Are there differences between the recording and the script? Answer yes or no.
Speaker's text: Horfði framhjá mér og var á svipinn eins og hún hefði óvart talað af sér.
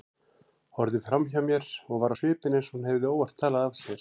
no